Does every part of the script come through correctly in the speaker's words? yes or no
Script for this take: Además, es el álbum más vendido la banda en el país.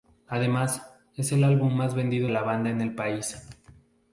yes